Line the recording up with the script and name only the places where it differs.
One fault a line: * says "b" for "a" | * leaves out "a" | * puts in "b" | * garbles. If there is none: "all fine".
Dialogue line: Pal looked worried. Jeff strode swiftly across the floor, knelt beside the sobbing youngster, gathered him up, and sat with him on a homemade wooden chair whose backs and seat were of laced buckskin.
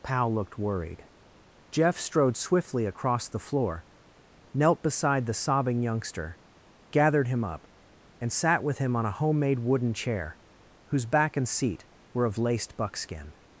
* says "back" for "backs"